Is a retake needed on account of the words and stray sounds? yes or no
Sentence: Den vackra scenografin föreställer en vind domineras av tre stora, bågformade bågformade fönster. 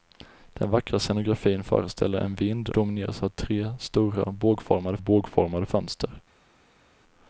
no